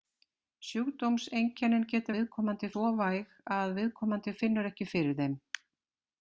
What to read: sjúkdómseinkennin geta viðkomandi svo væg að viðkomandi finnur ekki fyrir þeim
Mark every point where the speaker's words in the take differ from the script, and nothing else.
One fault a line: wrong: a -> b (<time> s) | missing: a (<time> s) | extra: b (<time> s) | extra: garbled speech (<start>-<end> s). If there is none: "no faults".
no faults